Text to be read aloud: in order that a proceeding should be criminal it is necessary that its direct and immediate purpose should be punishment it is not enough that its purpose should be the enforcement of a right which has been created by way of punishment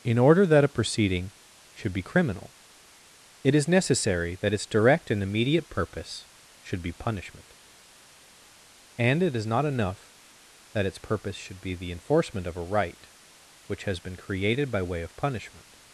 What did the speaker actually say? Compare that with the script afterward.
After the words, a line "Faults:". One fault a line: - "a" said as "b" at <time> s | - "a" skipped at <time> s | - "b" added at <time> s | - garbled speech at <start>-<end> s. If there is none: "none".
in order that a proceeding should be criminal it is necessary that its direct and immediate purpose should be punishment and it is not enough that its purpose should be the enforcement of a right which has been created by way of punishment
Faults:
- "and" added at 9.0 s